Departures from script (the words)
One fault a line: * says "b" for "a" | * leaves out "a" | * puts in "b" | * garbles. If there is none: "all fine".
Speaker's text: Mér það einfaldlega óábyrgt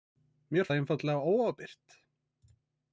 all fine